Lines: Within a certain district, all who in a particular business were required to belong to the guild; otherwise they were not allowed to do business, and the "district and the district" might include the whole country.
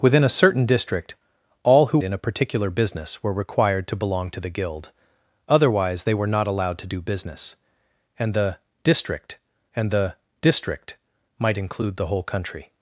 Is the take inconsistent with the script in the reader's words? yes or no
no